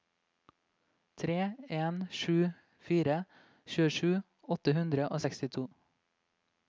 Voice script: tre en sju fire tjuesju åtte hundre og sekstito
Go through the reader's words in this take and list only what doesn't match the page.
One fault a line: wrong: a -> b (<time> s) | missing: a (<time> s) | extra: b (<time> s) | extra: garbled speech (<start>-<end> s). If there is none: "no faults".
no faults